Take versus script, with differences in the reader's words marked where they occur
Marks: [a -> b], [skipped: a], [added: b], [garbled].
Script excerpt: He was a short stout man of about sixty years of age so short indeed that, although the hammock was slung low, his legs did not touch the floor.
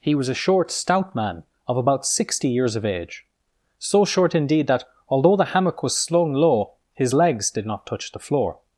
He was a short stout man of about sixty years of age so short indeed that, although the hammock was slung low, his legs did not touch the floor.